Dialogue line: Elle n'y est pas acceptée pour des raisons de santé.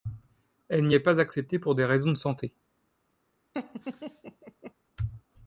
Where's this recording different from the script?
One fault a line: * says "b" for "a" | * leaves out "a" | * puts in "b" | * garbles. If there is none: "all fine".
all fine